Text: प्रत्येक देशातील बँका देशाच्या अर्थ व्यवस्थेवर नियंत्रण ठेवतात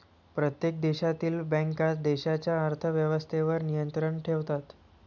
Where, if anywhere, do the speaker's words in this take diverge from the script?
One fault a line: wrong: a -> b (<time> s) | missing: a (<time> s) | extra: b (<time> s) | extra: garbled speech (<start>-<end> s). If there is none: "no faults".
no faults